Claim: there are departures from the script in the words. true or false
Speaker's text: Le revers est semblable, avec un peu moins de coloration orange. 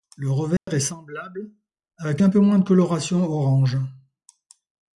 false